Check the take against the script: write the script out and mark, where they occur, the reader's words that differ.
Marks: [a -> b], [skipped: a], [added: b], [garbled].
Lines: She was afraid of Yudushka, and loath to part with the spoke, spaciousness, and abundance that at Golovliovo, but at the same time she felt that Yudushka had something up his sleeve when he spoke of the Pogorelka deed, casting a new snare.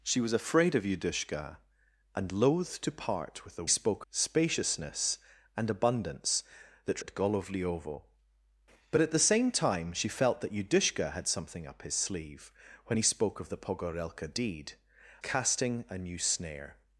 She was afraid of Yudushka, and loath to part with the spoke, spaciousness, and abundance that at Golovliovo, but at the same time she felt that Yudushka had something up his sleeve when he spoke of the Pogorelka deed, casting a new snare.